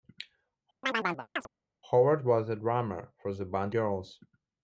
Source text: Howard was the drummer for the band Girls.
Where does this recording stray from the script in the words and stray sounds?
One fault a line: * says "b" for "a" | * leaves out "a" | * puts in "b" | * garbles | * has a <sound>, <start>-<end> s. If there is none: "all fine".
* has a chirp, 0.8-1.5 s